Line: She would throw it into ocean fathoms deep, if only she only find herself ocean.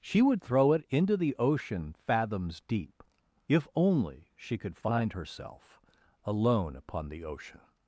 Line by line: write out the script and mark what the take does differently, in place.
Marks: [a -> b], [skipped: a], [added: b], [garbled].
She would throw it into [added: the] ocean fathoms deep, if only she [only -> could] find herself [added: alone upon the] ocean.